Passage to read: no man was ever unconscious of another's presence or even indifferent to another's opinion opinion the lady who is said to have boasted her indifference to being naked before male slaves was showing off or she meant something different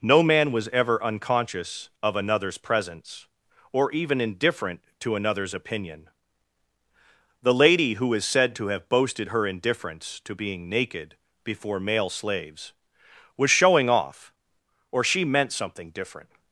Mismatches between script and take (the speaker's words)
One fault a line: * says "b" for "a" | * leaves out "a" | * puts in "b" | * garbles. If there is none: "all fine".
* leaves out "opinion"